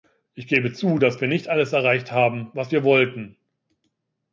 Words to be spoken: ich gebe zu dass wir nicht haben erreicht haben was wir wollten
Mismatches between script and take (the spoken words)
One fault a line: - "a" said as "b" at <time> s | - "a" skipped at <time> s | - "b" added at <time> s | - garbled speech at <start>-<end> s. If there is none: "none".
- "haben" said as "alles" at 1.5 s